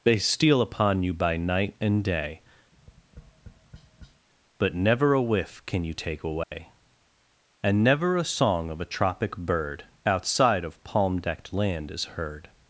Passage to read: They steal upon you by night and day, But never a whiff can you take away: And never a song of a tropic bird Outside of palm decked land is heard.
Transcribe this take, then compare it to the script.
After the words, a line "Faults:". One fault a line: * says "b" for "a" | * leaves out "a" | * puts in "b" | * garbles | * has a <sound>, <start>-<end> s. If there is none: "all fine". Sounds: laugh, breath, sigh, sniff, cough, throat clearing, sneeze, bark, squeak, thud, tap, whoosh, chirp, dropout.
They steal upon you by night and day, But never a whiff can you take away: And never a song of a tropic bird Outside of palm decked land is heard.
Faults:
* has a tap, 2.7-4.3 s
* has a dropout, 6.4-6.5 s